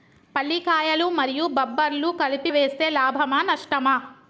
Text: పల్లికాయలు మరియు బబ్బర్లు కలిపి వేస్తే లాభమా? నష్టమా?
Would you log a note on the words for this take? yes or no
no